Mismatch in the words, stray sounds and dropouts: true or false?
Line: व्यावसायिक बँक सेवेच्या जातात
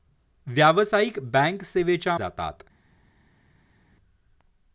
false